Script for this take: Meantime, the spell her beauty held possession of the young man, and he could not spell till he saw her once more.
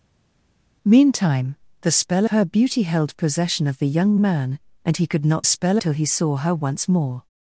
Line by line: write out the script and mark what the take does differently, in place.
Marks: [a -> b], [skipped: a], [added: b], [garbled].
Meantime, the spell her beauty held possession of the young man, and he could not spell till he saw her once more.